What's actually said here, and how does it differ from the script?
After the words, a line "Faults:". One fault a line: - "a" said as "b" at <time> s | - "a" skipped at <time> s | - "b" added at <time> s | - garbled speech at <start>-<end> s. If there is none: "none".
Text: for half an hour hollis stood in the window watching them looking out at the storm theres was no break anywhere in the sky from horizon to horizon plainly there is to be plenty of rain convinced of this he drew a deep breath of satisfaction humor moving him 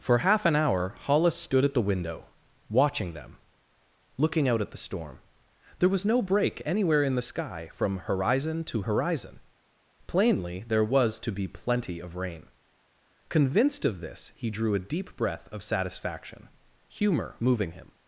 for half an hour hollis stood at the window watching them looking out at the storm there was no break anywhere in the sky from horizon to horizon plainly there was to be plenty of rain convinced of this he drew a deep breath of satisfaction humor moving him
Faults:
- "in" said as "at" at 1.6 s
- "theres" said as "there" at 5.8 s
- "is" said as "was" at 10.8 s